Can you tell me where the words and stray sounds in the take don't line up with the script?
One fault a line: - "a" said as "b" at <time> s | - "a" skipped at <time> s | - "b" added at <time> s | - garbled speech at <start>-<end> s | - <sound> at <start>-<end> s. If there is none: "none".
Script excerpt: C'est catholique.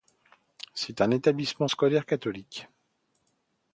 - "un établissement scolaire" added at 1.0 s